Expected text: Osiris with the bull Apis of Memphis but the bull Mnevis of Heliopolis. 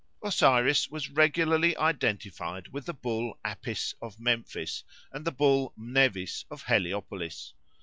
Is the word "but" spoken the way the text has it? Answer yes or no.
no